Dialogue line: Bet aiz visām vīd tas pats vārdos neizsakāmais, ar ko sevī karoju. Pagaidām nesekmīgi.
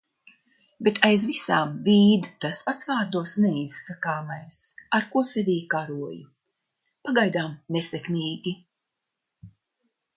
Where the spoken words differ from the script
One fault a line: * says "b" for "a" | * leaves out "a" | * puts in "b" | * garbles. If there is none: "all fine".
all fine